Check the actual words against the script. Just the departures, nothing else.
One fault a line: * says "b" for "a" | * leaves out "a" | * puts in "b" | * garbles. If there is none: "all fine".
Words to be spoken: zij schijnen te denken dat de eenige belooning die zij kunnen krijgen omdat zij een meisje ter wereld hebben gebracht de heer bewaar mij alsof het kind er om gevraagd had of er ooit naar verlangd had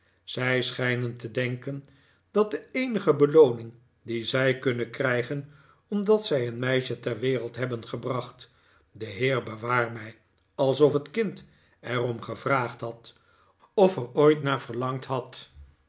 all fine